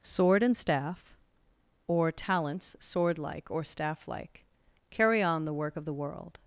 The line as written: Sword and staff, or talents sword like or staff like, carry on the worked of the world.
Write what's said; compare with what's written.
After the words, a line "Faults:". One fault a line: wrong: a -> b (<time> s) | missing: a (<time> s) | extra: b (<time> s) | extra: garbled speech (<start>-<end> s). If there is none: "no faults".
Sword and staff, or talents sword like or staff like, carry on the work of the world.
Faults:
wrong: worked -> work (5.5 s)